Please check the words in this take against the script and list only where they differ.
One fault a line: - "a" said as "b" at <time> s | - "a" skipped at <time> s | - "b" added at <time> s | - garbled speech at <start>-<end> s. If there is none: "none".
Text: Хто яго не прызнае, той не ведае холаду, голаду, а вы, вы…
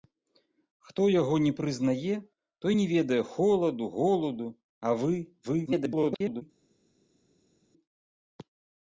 - garbled speech at 5.7-6.4 s